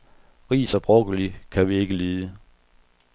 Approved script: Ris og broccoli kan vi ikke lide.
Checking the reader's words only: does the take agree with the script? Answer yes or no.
yes